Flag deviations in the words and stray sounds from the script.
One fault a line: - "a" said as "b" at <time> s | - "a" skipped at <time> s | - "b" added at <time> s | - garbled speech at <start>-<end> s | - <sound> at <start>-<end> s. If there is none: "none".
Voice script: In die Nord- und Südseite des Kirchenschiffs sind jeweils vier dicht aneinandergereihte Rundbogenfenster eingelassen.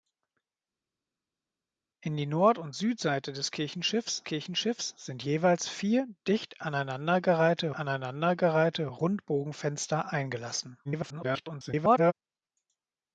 - "Kirchenschiffs" added at 4.2 s
- "aneinandergereihte" added at 7.7 s
- garbled speech at 10.8-12.1 s